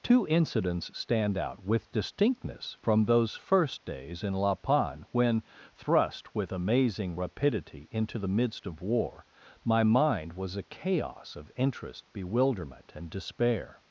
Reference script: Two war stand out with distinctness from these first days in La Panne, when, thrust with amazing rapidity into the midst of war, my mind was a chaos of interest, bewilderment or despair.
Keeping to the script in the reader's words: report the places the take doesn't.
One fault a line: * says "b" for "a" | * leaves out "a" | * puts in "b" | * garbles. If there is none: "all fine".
* says "incidents" for "war"
* says "those" for "these"
* says "and" for "or"